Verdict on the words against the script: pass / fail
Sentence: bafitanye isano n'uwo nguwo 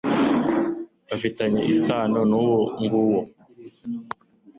pass